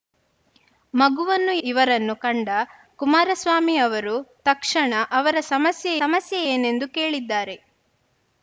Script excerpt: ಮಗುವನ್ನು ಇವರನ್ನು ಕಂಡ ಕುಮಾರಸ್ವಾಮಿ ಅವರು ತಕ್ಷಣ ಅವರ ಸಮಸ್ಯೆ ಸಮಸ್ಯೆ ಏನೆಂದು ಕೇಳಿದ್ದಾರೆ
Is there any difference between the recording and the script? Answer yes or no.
no